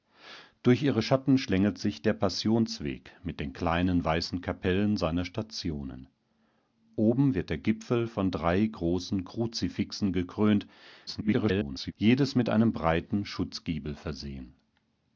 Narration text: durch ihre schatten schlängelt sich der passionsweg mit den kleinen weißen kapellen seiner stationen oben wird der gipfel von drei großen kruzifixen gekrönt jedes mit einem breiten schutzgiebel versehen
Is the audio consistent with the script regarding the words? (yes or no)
no